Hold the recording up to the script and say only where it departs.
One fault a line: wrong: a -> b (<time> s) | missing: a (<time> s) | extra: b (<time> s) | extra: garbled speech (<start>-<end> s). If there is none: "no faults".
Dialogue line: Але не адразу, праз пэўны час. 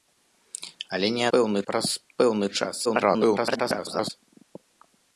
wrong: адразу -> пэўны (1.3 s)
extra: garbled speech (2.8-4.1 s)